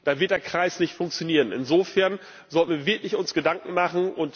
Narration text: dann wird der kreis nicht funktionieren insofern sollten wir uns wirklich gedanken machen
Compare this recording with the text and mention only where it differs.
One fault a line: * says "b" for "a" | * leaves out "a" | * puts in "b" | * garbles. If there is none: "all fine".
all fine